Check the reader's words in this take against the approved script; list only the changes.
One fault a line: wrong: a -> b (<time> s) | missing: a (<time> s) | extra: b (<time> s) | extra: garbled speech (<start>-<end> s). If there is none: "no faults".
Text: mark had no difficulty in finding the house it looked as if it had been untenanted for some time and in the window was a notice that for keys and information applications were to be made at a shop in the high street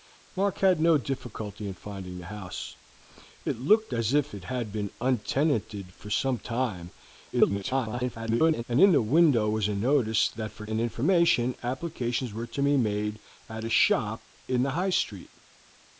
extra: garbled speech (7.3-8.6 s)
missing: keys (10.7 s)